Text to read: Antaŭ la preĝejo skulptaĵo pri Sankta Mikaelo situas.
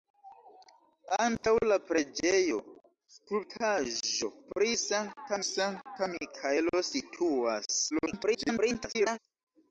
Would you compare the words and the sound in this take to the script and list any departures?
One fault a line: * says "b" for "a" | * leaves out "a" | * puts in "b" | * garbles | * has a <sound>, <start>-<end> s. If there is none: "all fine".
* has a dropout, 1.4-1.4 s
* puts in "Sankta"
* garbles